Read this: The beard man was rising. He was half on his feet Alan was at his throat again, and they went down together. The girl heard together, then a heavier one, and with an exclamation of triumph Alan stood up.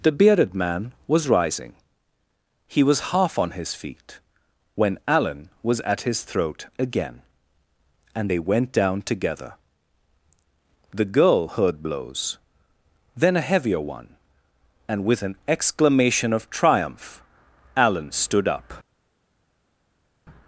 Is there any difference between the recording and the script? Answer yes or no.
yes